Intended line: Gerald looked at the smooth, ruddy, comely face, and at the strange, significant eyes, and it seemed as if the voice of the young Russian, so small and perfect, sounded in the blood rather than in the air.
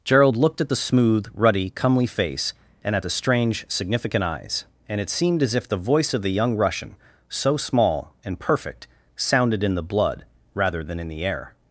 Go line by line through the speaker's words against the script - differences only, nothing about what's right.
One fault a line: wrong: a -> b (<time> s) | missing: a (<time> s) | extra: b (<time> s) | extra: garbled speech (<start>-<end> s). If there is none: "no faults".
no faults